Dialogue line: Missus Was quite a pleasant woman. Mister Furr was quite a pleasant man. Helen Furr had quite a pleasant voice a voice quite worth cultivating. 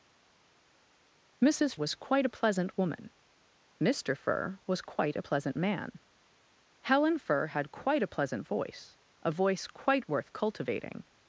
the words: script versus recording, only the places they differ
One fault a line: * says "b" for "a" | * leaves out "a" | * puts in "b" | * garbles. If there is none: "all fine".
all fine